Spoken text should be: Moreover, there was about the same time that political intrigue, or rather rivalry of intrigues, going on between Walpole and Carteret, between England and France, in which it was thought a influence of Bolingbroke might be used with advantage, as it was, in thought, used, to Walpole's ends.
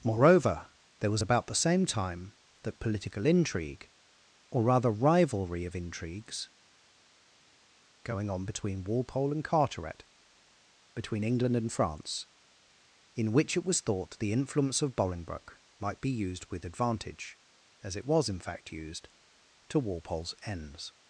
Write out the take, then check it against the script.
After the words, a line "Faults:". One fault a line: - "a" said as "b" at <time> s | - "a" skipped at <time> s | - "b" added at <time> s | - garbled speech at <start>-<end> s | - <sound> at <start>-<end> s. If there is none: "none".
Moreover, there was about the same time that political intrigue, or rather rivalry of intrigues, going on between Walpole and Carteret, between England and France, in which it was thought the influence of Bolingbroke might be used with advantage, as it was, in fact, used, to Walpole's ends.
Faults:
- "a" said as "the" at 14.2 s
- "thought" said as "fact" at 18.4 s